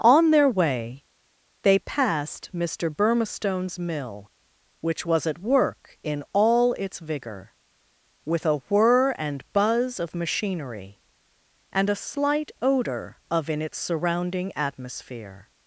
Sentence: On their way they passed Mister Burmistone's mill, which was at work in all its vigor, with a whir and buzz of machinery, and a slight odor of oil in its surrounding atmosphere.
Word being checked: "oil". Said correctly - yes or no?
no